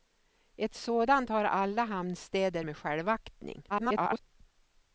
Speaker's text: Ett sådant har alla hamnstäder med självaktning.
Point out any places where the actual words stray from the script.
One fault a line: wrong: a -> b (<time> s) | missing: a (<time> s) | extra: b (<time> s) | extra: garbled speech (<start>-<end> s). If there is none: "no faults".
extra: garbled speech (3.7-4.2 s)